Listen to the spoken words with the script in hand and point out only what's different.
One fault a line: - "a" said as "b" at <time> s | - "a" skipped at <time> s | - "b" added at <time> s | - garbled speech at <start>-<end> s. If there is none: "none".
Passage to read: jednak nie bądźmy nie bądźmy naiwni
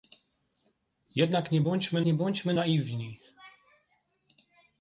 none